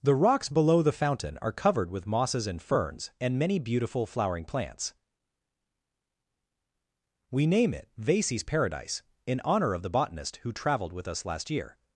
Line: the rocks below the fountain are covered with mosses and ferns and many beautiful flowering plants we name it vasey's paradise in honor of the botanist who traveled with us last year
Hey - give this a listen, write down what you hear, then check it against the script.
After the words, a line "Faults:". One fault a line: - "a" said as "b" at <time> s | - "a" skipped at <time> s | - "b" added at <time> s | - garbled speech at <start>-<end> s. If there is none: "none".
the rocks below the fountain are covered with mosses and ferns and many beautiful flowering plants we name it vasey's paradise in honor of the botanist who traveled with us last year
Faults:
none